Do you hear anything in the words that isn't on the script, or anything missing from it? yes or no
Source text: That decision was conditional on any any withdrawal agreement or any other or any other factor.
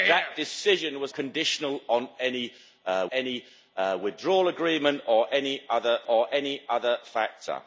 no